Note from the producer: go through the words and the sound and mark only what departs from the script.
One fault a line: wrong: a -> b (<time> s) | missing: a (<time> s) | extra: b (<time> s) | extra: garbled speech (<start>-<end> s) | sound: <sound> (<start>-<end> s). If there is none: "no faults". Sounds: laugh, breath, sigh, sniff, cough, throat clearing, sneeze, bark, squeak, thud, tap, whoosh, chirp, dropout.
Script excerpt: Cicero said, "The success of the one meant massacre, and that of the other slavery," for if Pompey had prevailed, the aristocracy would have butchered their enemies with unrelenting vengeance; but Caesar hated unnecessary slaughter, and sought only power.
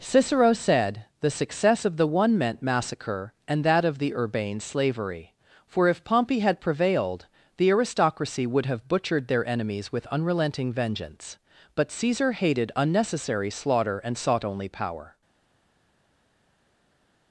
wrong: other -> urbane (4.2 s)